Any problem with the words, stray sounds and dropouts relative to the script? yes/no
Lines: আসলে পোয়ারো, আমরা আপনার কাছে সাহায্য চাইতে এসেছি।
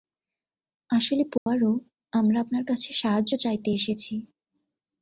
yes